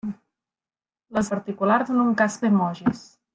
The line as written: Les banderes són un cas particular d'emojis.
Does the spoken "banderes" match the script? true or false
false